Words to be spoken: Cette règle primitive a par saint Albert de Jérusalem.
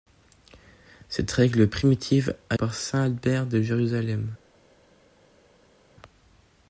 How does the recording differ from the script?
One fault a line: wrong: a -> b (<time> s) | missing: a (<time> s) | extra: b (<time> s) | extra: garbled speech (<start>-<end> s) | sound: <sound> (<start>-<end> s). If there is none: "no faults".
no faults